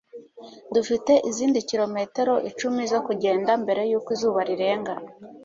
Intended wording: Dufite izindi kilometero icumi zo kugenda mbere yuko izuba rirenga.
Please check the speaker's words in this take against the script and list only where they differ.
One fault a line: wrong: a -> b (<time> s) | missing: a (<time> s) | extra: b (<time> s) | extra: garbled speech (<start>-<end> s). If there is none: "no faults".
no faults